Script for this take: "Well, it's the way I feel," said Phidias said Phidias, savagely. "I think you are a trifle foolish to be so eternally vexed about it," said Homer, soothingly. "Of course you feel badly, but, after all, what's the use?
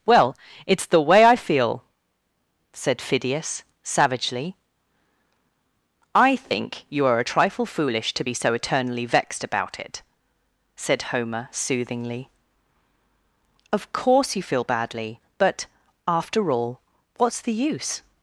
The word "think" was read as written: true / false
true